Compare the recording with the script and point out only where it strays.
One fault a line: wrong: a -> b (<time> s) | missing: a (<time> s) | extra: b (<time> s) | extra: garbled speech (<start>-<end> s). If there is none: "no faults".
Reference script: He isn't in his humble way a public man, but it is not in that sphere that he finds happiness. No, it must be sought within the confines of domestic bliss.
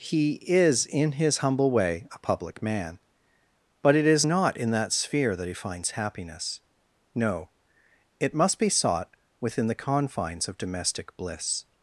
wrong: isn't -> is (0.5 s)